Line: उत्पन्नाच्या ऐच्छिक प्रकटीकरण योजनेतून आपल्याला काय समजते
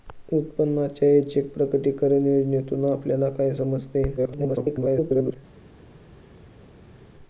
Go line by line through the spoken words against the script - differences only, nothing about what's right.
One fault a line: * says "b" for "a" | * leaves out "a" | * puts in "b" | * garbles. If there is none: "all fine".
* garbles